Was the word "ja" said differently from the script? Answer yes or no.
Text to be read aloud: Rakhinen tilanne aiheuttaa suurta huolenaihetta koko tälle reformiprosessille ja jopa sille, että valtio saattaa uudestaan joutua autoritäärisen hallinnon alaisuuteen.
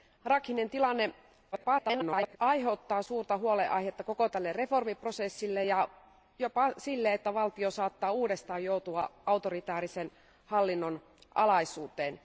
no